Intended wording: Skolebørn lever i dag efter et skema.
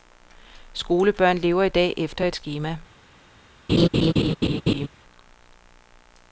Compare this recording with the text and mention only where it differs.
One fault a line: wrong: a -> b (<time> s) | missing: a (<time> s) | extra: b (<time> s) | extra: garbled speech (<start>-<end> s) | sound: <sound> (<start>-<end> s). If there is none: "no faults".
sound: laugh (3.7-4.9 s)